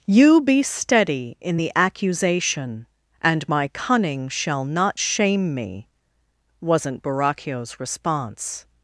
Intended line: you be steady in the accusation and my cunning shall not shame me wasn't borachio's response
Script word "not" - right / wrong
right